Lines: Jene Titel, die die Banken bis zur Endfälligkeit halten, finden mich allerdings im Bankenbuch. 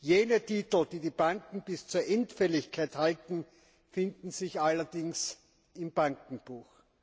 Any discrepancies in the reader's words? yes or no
yes